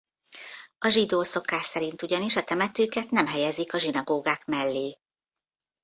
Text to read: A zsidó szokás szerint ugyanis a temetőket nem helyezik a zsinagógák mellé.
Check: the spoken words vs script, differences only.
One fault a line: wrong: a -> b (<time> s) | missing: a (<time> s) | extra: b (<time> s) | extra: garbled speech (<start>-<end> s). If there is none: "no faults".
no faults